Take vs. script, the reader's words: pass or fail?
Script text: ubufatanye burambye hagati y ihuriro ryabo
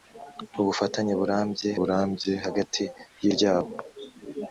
fail